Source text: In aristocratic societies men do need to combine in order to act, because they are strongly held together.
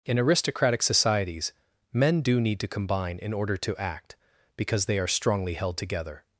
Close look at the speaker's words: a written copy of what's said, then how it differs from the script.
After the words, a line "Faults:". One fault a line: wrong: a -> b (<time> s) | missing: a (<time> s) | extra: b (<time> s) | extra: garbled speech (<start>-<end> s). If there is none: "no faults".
In aristocratic societies men do need to combine in order to act, because they are strongly held together.
Faults:
no faults